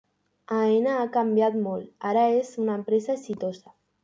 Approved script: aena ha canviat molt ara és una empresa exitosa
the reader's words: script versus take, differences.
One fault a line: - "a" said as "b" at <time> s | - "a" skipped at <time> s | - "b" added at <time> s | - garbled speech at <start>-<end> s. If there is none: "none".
none